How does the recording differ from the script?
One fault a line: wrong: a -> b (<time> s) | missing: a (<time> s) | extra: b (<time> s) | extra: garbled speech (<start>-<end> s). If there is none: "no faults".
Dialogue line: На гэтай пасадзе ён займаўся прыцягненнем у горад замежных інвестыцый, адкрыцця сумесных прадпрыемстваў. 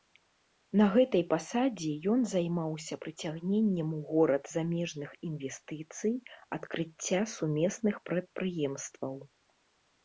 no faults